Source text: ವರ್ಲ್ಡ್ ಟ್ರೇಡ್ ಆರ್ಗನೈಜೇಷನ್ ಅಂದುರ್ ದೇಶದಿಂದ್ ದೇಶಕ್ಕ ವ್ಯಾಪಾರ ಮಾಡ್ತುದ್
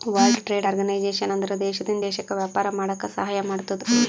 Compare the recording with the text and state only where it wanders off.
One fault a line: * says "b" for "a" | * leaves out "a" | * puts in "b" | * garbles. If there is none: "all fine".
* puts in "ಮಾಡಾಕ ಸಹಾಯ"